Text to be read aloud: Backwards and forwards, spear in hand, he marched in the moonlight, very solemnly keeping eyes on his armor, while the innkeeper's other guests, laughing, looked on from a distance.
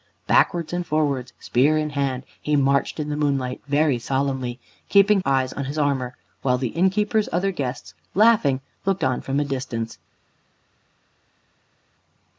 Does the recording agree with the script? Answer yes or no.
yes